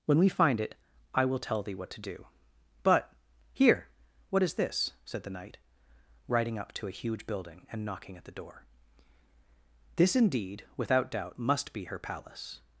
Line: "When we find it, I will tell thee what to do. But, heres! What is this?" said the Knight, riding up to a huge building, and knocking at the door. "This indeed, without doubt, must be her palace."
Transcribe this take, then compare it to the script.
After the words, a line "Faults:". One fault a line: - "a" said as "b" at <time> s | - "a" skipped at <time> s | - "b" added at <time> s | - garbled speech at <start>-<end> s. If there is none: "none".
"When we find it, I will tell thee what to do. But, here! What is this?" said the Knight, riding up to a huge building, and knocking at the door. "This indeed, without doubt, must be her palace."
Faults:
- "heres" said as "here" at 3.5 s